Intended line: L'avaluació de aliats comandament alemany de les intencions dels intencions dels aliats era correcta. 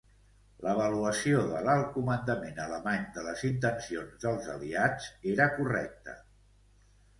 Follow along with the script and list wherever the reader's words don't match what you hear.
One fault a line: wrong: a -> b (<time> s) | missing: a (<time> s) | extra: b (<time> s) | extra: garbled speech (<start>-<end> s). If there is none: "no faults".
wrong: aliats -> l'alt (1.7 s)
missing: intencions dels (4.5 s)